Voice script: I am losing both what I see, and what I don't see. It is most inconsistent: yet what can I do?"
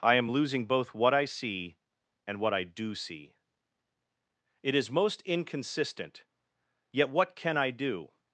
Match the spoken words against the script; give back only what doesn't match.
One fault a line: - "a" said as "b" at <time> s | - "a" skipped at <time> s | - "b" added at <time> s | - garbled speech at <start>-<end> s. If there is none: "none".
- "don't" said as "do" at 2.6 s